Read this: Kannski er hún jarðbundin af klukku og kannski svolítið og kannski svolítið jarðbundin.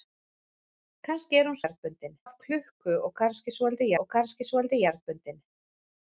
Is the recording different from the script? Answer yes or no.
no